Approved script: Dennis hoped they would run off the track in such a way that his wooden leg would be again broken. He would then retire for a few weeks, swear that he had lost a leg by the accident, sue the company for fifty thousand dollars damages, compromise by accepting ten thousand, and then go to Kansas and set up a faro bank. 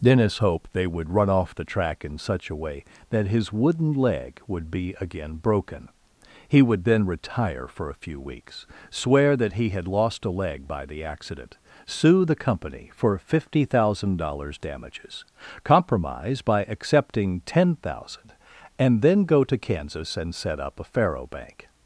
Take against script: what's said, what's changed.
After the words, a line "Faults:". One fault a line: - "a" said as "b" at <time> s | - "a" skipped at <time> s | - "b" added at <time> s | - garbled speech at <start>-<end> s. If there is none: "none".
Dennis hoped they would run off the track in such a way that his wooden leg would be again broken. He would then retire for a few weeks, swear that he had lost a leg by the accident, sue the company for fifty thousand dollars damages, compromise by accepting ten thousand, and then go to Kansas and set up a faro bank.
Faults:
none